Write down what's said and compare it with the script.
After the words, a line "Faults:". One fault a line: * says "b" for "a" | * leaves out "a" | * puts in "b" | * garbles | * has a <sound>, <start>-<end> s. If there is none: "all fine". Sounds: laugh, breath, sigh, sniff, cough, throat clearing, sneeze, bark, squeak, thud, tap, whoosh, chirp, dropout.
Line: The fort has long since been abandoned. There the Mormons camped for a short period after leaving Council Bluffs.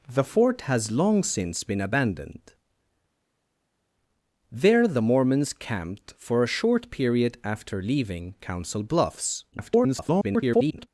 The fort has long since been abandoned. There the Mormons camped for a short period after leaving Council Bluffs. [garbled]
Faults:
* garbles